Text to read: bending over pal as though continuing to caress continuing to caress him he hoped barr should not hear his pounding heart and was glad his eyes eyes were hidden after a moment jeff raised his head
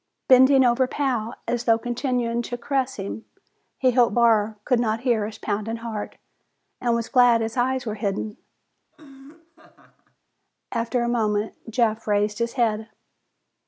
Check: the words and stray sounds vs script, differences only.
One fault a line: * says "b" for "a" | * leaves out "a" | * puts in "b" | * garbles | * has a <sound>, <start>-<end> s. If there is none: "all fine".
* leaves out "continuing to caress"
* says "could" for "should"
* leaves out "eyes"
* has a laugh, 8.9-10.2 s